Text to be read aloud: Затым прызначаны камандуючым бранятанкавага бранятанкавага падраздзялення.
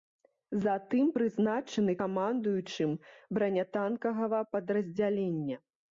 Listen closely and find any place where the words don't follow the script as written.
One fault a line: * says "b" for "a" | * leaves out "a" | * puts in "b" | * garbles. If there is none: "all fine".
* leaves out "бранятанкавага"